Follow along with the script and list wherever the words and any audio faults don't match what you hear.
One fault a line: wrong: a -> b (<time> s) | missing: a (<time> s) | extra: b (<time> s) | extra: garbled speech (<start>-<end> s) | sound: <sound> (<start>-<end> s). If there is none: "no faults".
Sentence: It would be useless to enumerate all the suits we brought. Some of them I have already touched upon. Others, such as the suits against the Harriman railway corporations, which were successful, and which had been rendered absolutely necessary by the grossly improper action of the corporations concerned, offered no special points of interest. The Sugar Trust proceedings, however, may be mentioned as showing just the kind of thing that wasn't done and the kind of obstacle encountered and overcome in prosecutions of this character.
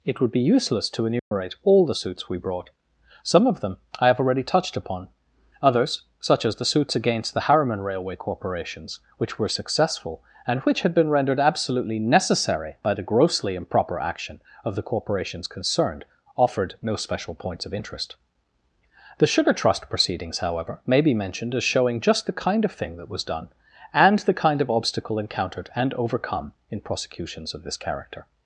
sound: dropout (1.2-1.3 s)
wrong: wasn't -> was (23.1 s)